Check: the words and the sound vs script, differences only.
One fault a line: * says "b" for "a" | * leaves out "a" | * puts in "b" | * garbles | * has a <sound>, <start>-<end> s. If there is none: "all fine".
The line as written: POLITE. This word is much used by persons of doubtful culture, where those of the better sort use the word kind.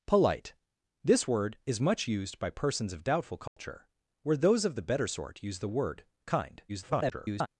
* has a dropout, 3.5-3.6 s
* garbles